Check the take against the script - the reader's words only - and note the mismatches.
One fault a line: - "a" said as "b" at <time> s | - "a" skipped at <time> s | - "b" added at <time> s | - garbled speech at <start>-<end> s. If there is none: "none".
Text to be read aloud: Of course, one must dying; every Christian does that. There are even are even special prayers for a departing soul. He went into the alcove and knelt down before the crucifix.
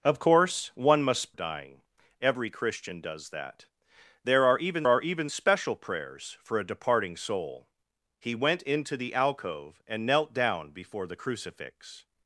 none